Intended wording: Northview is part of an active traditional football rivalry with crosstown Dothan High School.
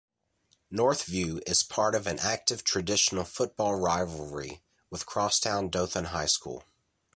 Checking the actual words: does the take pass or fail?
pass